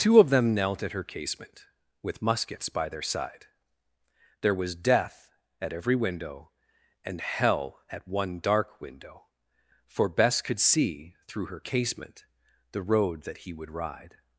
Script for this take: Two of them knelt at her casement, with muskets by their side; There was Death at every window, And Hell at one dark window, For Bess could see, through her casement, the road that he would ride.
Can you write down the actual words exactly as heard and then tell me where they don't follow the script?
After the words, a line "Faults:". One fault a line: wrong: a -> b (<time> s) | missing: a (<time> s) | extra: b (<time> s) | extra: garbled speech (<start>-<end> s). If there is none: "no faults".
Two of them knelt at her casement, with muskets by their side; There was Death at every window, And Hell at one dark window, For Bess could see, through her casement, the road that he would ride.
Faults:
no faults